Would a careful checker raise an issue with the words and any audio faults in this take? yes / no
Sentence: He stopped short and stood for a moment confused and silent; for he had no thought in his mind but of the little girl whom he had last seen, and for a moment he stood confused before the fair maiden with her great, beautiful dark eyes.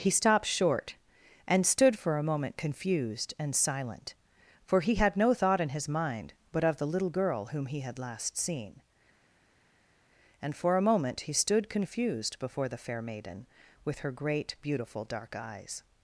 no